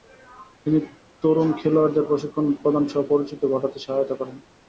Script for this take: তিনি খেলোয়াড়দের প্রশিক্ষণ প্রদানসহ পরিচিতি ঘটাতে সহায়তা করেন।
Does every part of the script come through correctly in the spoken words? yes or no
no